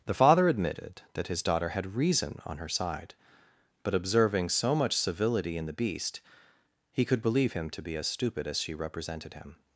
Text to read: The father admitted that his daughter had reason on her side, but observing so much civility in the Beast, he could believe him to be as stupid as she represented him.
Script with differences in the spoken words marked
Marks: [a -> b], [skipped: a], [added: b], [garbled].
The father admitted that his daughter had reason on her side, but observing so much civility in the Beast, he could believe him to be as stupid as she represented him.